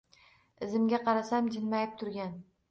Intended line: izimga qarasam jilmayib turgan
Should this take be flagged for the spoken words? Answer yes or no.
no